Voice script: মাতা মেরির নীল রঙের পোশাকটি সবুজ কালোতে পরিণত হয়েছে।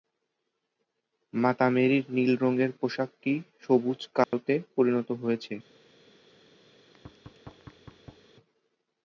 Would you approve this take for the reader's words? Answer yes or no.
yes